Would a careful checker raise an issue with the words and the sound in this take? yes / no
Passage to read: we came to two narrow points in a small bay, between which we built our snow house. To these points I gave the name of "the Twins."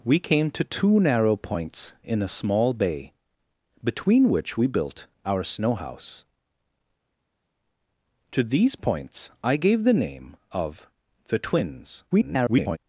yes